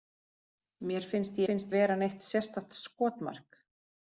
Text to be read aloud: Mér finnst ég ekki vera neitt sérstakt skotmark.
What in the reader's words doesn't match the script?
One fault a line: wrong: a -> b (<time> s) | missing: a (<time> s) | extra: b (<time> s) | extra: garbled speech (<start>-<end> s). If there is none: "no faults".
wrong: ekki -> finnst (1.5 s)